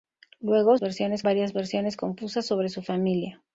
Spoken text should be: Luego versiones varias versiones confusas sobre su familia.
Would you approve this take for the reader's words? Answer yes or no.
yes